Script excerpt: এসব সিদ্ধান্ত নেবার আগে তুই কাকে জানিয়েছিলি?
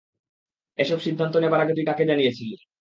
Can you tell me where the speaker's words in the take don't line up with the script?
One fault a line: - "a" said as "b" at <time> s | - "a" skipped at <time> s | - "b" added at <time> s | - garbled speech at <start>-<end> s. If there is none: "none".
none